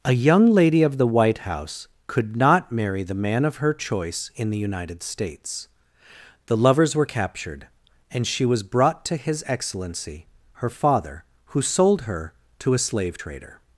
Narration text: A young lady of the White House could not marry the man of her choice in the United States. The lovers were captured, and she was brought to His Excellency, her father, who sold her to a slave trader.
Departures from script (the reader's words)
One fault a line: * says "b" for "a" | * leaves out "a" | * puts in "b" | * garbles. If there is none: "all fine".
all fine